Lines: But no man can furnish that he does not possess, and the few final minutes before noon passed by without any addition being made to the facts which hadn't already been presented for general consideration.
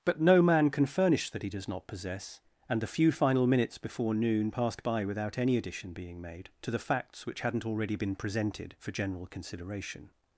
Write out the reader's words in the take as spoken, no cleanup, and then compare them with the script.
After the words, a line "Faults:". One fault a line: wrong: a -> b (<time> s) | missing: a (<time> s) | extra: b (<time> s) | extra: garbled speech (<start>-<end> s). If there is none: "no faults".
But no man can furnish that he does not possess, and the few final minutes before noon passed by without any addition being made to the facts which hadn't already been presented for general consideration.
Faults:
no faults